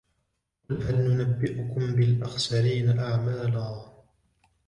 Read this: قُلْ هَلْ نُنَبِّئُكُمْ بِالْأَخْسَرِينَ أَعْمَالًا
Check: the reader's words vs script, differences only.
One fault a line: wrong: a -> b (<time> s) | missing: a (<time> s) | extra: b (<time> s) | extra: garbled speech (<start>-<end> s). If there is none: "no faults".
no faults